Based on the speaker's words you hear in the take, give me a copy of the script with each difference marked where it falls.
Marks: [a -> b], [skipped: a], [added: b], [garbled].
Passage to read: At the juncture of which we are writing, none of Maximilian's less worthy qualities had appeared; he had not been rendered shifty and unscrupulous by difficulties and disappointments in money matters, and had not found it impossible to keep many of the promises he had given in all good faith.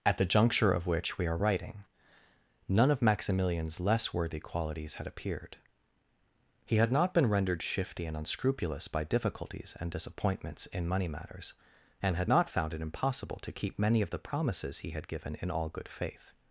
At the juncture of which we are writing, none of Maximilian's less worthy qualities had appeared; he had not been rendered shifty and unscrupulous by difficulties and disappointments in money matters, and had not found it impossible to keep many of the promises he had given in all good faith.